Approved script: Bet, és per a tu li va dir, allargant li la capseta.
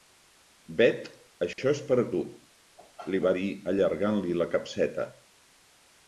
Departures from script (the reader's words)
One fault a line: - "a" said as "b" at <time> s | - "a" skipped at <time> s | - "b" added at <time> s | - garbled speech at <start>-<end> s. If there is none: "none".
- "això" added at 1.4 s